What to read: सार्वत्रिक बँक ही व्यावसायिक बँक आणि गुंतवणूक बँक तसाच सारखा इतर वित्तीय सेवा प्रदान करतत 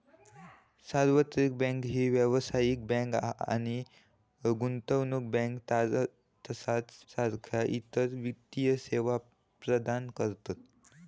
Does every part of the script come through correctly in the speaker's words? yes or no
yes